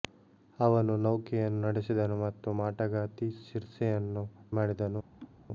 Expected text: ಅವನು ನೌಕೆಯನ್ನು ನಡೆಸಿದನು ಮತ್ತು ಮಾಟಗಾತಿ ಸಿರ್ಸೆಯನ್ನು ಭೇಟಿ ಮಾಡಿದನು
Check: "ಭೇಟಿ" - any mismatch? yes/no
yes